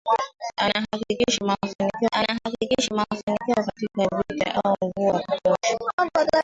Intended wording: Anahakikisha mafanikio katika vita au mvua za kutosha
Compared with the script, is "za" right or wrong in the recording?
wrong